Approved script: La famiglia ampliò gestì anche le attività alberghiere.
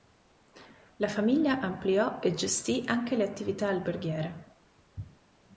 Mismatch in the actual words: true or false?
true